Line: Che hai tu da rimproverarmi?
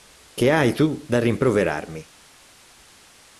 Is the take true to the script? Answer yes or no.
yes